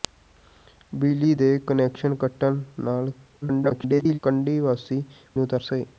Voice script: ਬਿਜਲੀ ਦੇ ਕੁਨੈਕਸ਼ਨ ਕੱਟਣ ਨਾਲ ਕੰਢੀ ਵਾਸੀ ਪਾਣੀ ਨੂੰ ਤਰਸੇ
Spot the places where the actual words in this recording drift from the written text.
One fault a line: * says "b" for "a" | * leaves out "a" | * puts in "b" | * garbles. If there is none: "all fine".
* garbles
* leaves out "ਪਾਣੀ"